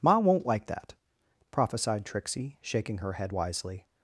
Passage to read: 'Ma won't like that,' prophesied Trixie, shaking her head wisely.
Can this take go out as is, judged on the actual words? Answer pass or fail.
pass